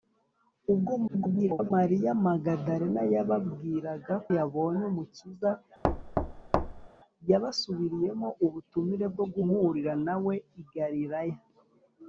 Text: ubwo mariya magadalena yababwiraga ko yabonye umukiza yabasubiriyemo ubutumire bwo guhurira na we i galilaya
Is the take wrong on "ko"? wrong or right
wrong